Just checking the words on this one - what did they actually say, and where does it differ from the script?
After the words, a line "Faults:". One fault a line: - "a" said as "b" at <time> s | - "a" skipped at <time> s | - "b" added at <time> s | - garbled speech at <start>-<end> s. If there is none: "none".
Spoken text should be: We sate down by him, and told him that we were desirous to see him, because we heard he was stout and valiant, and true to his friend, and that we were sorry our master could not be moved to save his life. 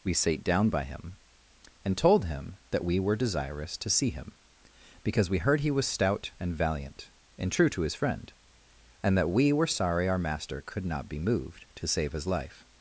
We sate down by him, and told him that we were desirous to see him, because we heard he was stout and valiant, and true to his friend, and that we were sorry our master could not be moved to save his life.
Faults:
none